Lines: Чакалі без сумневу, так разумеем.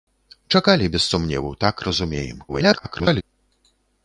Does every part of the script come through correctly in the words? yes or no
no